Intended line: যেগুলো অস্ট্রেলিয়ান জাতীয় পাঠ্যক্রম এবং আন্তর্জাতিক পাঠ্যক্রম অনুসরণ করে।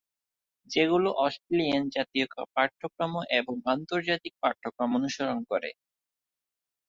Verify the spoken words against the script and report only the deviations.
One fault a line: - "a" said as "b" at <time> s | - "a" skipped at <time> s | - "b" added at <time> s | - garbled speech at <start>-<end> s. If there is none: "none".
none